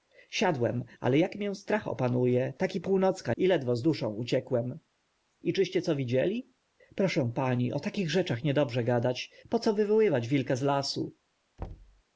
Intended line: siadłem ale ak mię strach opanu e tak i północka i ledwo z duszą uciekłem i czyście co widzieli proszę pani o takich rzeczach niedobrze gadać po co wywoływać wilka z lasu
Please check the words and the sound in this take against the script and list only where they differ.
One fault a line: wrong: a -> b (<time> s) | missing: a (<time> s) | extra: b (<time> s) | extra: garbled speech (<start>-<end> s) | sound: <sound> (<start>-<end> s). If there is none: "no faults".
sound: thud (11.6-12.0 s)